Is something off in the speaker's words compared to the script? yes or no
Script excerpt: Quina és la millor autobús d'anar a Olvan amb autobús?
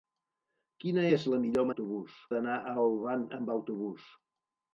no